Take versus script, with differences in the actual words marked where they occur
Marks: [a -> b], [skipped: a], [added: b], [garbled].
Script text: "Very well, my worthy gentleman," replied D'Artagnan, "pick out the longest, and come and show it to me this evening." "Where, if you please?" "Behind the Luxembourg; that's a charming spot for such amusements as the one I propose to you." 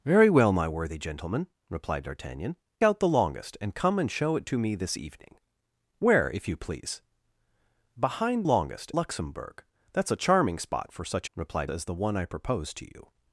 "Very well, my worthy gentleman," replied D'Artagnan, [skipped: "pick] out the longest, and come and show it to me this evening." "Where, if you please?" "Behind [the -> longest] Luxembourg; that's a charming spot for such [amusements -> replied] as the one I propose to you."